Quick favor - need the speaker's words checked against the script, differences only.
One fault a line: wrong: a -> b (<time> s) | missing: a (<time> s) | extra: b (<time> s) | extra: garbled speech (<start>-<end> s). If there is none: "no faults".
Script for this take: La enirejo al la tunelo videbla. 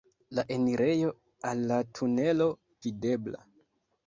no faults